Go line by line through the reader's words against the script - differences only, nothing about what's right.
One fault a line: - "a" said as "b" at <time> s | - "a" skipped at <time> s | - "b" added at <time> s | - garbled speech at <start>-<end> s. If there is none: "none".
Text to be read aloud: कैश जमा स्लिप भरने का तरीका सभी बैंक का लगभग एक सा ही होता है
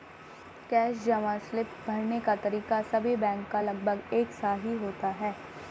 none